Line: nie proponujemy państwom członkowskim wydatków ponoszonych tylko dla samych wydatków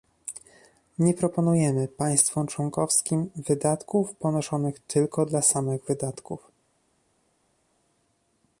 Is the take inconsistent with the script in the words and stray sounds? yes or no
no